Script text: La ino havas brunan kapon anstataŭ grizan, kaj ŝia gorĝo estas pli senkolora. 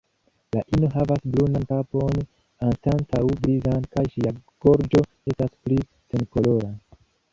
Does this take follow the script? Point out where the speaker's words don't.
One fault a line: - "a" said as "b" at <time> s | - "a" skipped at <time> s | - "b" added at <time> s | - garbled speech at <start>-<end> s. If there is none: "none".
none